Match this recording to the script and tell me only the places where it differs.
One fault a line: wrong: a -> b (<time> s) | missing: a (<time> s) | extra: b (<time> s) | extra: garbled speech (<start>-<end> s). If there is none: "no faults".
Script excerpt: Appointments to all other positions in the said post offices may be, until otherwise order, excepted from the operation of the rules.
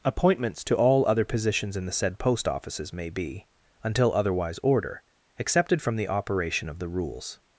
no faults